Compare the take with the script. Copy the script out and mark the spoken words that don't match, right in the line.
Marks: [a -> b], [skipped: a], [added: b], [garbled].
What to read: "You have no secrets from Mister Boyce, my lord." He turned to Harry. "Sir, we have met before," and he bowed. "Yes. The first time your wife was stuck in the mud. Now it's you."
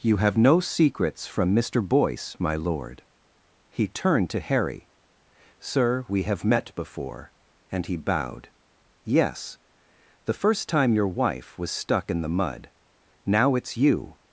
"You have no secrets from Mister Boyce, my lord." He turned to Harry. "Sir, we have met before," and he bowed. "Yes. The first time your wife was stuck in the mud. Now it's you."